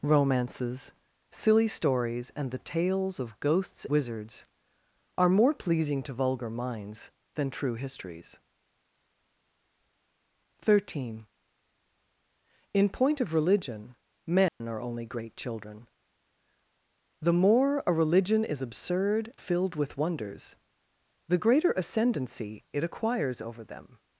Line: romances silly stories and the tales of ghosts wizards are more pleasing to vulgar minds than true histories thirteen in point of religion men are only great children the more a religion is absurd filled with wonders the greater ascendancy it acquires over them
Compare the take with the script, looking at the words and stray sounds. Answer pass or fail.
fail